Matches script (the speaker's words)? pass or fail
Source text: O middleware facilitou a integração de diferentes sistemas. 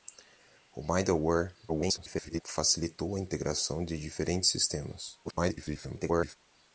fail